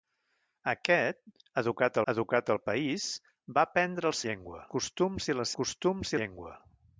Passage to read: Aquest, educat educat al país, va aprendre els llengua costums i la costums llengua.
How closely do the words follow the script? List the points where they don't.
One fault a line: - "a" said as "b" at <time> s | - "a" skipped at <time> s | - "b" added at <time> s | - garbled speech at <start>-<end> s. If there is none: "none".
none